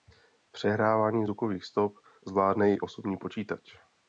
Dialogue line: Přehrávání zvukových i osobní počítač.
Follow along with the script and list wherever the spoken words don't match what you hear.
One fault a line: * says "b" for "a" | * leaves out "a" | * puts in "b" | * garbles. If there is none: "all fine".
* puts in "stop zvládne"